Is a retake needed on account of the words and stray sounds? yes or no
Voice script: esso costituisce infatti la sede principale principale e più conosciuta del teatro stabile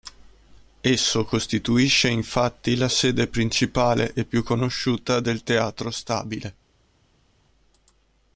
yes